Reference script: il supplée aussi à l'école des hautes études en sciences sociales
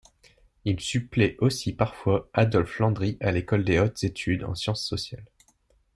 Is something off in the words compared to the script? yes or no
yes